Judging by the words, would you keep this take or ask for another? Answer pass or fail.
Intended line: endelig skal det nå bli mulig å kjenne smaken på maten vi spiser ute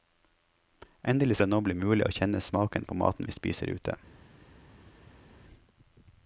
fail